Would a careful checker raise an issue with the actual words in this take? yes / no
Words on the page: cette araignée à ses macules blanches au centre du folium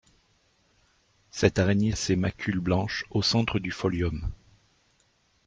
no